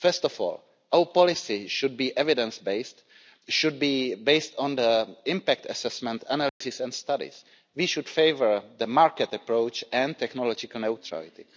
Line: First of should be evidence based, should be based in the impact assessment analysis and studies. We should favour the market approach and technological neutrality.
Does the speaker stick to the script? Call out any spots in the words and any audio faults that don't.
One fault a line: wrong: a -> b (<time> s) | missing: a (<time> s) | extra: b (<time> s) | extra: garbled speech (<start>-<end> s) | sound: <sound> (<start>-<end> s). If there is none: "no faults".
extra: all our policy (0.4 s)
wrong: in -> on (4.6 s)
sound: dropout (6.5-6.6 s)